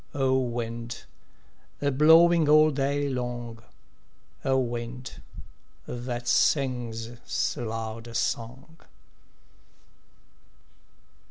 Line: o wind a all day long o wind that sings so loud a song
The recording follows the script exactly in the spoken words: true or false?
false